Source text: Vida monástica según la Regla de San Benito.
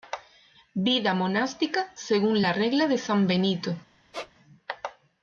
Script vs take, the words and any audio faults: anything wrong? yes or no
yes